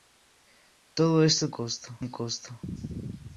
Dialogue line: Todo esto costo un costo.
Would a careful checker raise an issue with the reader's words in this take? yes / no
no